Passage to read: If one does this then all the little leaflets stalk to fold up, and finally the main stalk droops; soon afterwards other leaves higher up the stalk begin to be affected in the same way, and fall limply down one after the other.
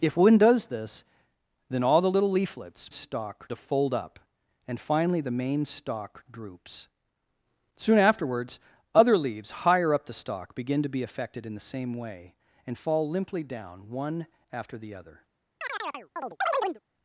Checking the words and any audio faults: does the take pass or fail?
fail